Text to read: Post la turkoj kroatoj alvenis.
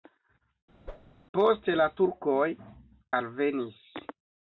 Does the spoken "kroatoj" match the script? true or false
false